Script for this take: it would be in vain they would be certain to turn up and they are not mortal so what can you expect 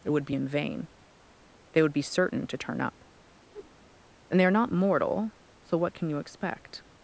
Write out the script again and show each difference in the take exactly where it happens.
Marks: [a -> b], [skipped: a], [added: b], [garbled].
it would be in vain they would be certain to turn up and they are not mortal so what can you expect